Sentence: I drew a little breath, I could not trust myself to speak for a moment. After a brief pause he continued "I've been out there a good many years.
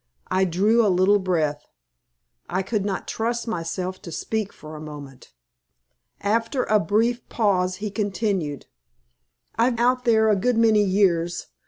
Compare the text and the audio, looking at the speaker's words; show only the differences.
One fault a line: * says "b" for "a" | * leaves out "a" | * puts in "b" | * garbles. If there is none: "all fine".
* leaves out "been"